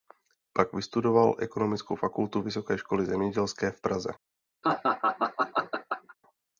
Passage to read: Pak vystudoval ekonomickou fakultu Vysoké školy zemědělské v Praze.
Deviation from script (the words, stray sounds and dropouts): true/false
true